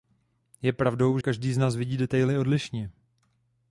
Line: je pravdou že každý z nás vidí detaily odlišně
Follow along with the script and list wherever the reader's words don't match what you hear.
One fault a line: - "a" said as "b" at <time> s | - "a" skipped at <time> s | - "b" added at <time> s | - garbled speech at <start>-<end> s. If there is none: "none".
- "že" skipped at 1.2 s